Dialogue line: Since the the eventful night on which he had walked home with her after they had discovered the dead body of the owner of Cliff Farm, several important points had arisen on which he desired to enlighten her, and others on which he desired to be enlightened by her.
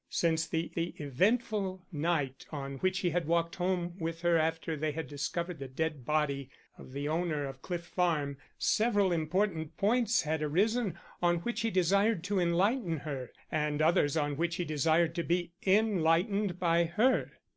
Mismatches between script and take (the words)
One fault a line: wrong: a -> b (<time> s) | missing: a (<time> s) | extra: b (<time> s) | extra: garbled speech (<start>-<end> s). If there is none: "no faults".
no faults